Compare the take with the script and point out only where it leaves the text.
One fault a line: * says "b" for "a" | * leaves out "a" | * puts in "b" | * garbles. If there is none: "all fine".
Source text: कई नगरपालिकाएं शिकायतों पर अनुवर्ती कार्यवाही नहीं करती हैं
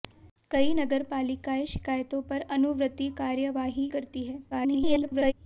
* leaves out "नहीं"
* garbles